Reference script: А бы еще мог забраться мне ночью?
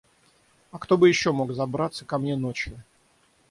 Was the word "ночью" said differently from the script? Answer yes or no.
no